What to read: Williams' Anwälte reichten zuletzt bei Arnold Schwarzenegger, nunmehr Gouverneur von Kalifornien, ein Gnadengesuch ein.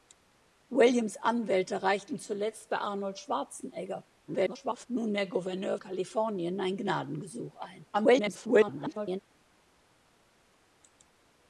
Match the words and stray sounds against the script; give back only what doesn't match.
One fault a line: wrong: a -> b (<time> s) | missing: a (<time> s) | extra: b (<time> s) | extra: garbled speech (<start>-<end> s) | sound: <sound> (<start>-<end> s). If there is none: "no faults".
extra: garbled speech (4.3-4.9 s)
missing: von (5.8 s)
extra: garbled speech (7.9-9.2 s)